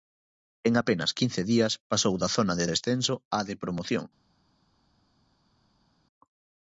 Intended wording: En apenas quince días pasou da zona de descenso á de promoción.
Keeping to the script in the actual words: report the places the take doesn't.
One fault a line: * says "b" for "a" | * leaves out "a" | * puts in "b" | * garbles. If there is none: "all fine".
all fine